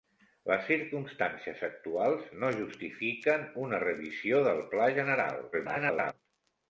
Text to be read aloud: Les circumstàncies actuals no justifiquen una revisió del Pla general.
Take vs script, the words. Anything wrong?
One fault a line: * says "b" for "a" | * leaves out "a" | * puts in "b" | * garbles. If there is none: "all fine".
* garbles